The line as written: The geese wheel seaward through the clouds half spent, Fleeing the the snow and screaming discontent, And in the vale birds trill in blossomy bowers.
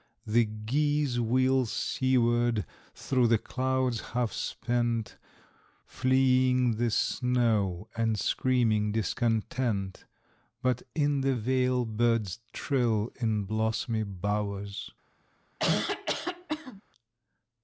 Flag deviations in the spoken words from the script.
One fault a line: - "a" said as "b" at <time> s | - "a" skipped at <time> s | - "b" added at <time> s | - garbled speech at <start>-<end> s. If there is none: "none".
- "the" skipped at 6.9 s
- "And" said as "But" at 10.6 s